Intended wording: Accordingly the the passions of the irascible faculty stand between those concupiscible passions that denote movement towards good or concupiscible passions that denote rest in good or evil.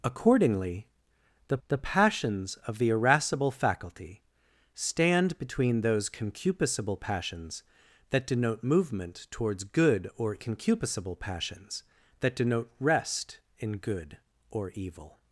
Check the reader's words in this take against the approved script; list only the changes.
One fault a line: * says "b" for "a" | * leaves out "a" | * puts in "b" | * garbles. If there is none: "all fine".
all fine